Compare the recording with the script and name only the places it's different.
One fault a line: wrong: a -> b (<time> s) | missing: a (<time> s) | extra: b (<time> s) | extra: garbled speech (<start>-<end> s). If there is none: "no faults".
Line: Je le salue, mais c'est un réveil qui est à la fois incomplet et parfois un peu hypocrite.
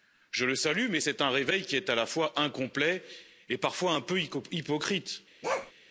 no faults